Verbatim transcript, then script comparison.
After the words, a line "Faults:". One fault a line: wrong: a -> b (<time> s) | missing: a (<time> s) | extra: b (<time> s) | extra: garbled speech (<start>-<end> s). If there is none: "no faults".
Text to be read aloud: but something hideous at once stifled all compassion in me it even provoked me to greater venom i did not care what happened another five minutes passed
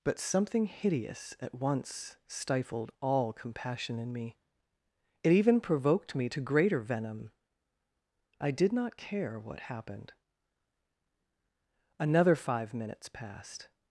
but something hideous at once stifled all compassion in me it even provoked me to greater venom i did not care what happened another five minutes passed
Faults:
no faults